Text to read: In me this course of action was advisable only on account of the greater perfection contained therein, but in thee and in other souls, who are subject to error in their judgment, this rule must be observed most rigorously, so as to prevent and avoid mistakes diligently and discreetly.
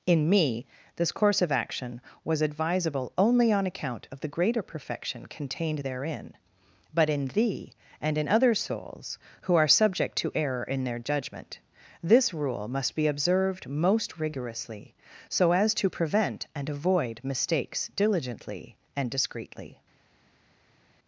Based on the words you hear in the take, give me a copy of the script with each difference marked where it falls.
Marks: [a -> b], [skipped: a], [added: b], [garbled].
In me this course of action was advisable only on account of the greater perfection contained therein, but in thee and in other souls, who are subject to error in their judgment, this rule must be observed most rigorously, so as to prevent and avoid mistakes diligently and discreetly.